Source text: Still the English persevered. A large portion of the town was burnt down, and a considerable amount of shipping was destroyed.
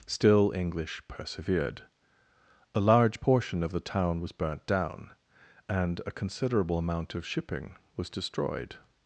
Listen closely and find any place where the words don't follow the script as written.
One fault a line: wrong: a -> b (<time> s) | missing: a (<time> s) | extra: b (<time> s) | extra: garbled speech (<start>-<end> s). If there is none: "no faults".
missing: the (0.5 s)